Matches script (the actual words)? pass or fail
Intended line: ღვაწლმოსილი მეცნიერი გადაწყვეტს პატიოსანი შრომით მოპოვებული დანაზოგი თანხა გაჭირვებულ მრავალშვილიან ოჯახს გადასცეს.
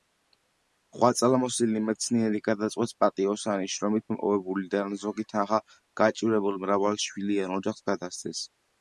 pass